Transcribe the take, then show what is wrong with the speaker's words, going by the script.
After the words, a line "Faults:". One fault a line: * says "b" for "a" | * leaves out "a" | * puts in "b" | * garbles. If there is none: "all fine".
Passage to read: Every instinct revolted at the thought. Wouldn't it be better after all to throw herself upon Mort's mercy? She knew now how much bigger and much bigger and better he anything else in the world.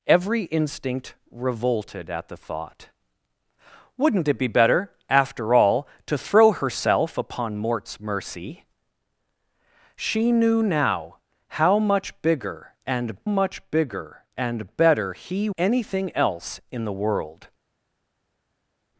Every instinct revolted at the thought. Wouldn't it be better after all to throw herself upon Mort's mercy? She knew now how much bigger and much bigger and better he anything else in the world.
Faults:
all fine